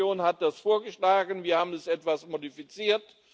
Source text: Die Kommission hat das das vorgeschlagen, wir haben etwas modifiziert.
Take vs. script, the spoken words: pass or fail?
fail